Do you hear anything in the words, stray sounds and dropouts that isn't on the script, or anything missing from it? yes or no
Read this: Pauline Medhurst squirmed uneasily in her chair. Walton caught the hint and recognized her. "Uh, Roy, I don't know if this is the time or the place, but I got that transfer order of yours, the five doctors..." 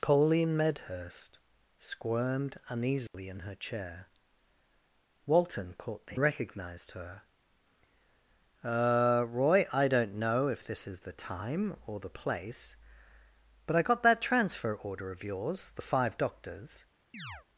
yes